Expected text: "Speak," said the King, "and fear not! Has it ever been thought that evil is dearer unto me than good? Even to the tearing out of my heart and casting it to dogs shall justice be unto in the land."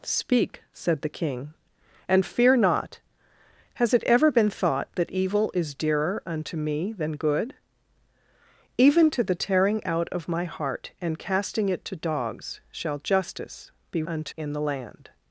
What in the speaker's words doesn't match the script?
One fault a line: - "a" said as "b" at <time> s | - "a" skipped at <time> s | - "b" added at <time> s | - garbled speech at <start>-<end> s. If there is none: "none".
none